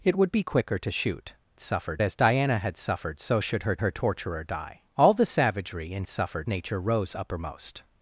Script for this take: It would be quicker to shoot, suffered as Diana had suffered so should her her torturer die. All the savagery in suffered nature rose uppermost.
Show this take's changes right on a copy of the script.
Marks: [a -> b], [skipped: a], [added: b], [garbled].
It would be quicker to shoot, suffered as Diana had suffered so should her her torturer die. All the savagery in suffered nature rose uppermost.